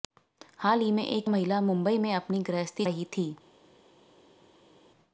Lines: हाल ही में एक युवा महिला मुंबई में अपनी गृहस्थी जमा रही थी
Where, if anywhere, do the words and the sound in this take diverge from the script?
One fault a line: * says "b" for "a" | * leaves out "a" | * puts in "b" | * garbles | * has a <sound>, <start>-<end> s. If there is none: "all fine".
* leaves out "युवा"
* leaves out "जमा"